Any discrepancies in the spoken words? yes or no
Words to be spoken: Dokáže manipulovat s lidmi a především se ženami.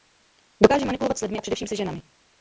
no